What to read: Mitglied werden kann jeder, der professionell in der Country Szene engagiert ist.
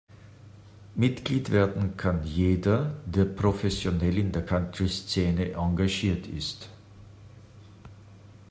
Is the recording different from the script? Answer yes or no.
no